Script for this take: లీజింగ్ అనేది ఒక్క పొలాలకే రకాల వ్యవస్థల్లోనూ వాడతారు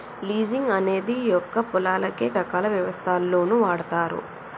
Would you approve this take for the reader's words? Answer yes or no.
yes